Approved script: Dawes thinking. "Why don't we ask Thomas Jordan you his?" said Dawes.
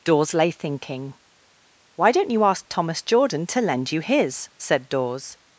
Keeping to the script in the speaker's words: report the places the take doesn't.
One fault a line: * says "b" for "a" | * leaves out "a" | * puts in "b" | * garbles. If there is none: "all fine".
* puts in "lay"
* says "you" for "we"
* puts in "to lend"